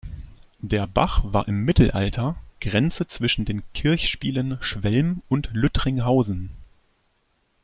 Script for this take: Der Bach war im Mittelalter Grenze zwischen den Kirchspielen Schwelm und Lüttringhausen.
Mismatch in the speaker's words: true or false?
false